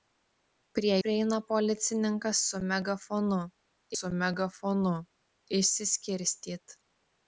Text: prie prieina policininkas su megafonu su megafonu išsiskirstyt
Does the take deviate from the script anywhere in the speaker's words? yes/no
no